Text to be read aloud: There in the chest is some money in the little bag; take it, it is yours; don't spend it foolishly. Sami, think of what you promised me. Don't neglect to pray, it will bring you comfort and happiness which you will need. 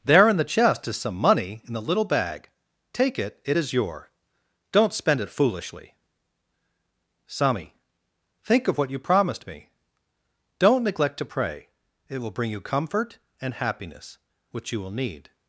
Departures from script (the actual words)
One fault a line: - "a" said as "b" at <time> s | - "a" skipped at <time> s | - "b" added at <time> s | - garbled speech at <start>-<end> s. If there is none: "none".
- "yours" said as "your" at 3.7 s